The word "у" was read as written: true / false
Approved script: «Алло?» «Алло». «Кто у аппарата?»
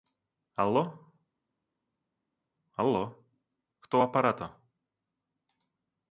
true